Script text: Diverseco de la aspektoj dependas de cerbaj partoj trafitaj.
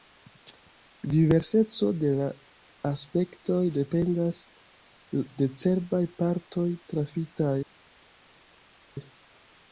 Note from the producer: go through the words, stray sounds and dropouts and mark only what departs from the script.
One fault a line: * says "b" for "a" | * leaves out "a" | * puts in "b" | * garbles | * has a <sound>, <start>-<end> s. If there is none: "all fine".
all fine